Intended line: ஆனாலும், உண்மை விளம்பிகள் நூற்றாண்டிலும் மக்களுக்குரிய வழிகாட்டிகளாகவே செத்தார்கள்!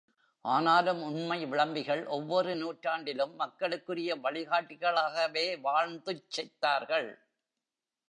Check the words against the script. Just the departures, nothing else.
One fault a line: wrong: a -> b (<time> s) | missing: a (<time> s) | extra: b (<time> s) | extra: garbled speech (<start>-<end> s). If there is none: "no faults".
extra: ஒவ்வொரு (2.1 s)
extra: வாழ்ந்துச் (5.6 s)